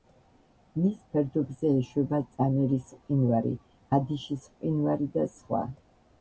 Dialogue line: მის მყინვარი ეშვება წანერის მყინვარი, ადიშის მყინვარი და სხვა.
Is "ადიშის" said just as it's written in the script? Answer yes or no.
yes